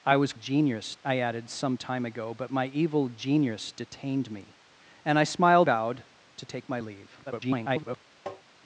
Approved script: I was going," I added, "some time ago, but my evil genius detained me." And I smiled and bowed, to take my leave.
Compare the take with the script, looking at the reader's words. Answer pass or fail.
fail